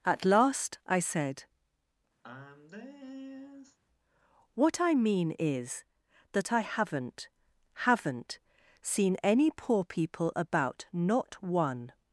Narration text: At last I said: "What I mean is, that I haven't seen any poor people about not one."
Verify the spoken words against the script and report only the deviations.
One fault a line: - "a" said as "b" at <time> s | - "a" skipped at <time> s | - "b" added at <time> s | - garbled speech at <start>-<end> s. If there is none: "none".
- "haven't" added at 7.8 s